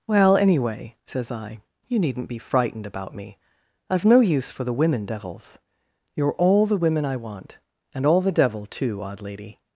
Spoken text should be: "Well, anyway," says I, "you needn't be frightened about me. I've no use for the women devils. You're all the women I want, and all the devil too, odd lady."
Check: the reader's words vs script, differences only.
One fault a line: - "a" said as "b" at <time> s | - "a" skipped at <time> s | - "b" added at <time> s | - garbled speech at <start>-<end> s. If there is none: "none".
none